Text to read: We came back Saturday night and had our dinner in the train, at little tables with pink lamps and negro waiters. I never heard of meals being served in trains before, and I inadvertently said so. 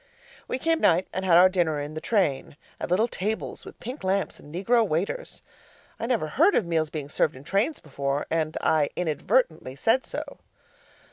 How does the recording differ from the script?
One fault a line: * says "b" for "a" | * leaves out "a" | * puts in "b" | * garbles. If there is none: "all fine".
* leaves out "back Saturday"